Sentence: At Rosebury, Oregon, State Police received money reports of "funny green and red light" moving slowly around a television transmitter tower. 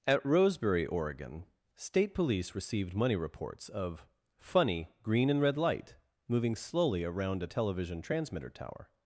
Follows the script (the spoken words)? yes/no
yes